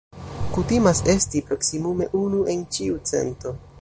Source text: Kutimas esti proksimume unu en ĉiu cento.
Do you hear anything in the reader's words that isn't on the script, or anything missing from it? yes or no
no